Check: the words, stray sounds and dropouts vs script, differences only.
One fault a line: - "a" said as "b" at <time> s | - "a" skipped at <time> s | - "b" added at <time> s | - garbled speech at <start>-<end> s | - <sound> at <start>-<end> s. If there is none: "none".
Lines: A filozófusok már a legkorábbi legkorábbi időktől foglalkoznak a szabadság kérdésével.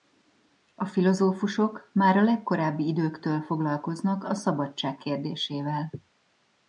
- "legkorábbi" skipped at 2.9 s